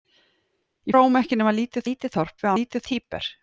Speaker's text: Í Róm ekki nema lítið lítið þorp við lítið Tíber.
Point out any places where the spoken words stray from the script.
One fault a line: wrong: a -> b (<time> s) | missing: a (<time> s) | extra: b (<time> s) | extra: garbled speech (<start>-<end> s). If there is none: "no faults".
no faults